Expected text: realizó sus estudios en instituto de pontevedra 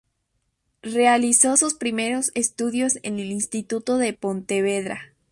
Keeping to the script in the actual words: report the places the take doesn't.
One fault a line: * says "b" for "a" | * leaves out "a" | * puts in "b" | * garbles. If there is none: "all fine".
* puts in "primeros"
* puts in "el"